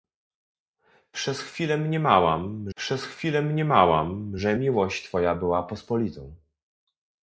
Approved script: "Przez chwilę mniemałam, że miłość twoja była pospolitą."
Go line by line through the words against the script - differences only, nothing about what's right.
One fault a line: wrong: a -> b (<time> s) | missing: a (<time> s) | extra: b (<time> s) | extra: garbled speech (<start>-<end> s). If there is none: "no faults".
extra: przez chwilę mniemałam (2.7 s)